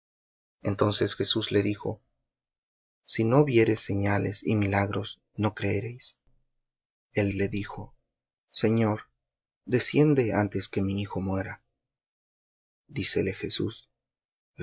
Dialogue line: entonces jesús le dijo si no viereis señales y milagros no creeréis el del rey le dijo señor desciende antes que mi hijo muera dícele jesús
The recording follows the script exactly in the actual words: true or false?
false